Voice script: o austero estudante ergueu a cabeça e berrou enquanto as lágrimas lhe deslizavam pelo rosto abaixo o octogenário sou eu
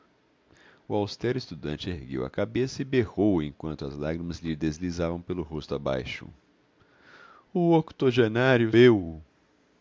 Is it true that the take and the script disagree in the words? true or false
true